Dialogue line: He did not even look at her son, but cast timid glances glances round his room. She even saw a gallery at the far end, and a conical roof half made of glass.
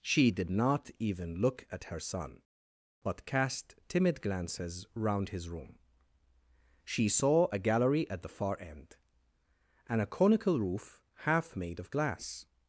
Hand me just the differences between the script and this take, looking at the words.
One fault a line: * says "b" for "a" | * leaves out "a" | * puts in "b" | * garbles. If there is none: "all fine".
* says "She" for "He"
* leaves out "glances"
* leaves out "even"